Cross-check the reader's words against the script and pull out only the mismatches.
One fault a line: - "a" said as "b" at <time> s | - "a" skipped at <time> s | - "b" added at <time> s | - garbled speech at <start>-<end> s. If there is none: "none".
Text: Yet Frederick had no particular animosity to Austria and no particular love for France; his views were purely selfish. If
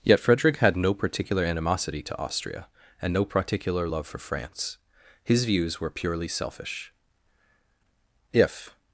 none